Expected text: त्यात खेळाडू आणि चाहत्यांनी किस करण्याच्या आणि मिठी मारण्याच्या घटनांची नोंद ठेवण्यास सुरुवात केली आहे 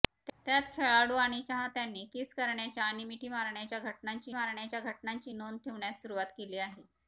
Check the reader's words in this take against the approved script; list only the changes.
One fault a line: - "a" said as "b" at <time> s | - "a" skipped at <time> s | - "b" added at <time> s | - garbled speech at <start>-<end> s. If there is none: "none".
- "मारण्याच्या घटनांची" added at 4.3 s